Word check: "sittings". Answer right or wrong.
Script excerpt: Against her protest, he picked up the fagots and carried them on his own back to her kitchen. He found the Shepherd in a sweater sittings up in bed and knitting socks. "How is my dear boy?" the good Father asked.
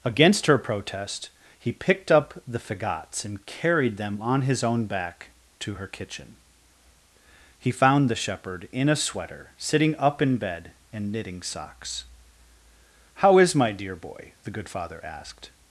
wrong